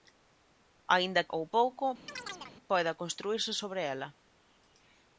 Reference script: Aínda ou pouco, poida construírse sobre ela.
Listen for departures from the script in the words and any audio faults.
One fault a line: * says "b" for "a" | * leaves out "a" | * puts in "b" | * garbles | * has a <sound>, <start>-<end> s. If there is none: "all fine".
* has a chirp, 2.1-2.6 s